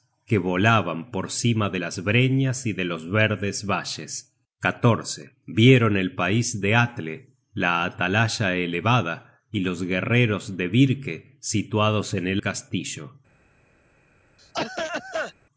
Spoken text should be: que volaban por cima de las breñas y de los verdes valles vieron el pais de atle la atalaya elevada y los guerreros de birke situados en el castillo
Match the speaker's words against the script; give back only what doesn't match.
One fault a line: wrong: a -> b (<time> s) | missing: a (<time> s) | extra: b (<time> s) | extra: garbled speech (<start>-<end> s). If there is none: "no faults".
no faults